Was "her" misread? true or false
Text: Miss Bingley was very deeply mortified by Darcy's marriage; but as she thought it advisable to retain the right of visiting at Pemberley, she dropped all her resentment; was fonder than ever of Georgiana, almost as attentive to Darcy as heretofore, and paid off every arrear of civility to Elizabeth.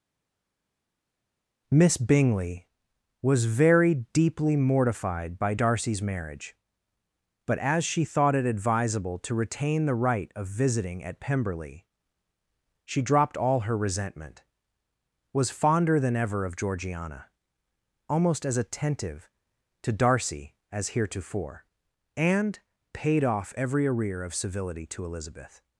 false